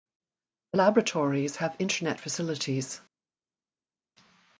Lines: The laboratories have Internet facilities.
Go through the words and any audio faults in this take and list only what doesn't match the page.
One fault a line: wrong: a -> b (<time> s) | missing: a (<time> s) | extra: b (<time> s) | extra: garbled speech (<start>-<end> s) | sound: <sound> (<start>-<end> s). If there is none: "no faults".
no faults